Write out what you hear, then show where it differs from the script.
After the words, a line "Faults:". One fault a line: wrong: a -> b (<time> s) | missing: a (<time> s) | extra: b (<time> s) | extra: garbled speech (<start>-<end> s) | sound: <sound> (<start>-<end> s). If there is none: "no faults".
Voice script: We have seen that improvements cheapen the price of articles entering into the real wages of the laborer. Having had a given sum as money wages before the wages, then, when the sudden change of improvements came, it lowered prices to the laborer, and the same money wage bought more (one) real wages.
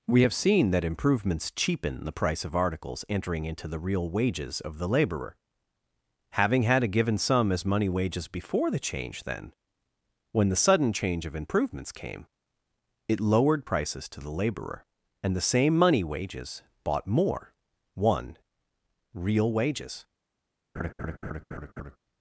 We have seen that improvements cheapen the price of articles entering into the real wages of the laborer. Having had a given sum as money wages before the change, then, when the sudden change of improvements came, it lowered prices to the laborer, and the same money wages bought more (one) real wages.
Faults:
wrong: wages -> change (8.8 s)
wrong: wage -> wages (16.0 s)
sound: laugh (20.8-22.0 s)